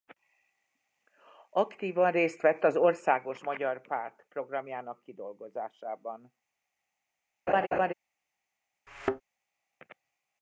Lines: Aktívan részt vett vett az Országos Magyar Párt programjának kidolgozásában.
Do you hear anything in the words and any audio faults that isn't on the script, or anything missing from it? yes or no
yes